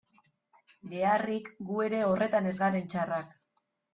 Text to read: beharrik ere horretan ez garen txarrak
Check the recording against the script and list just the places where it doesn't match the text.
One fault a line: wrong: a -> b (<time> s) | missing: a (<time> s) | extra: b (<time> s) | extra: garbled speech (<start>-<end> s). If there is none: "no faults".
extra: gu (1.7 s)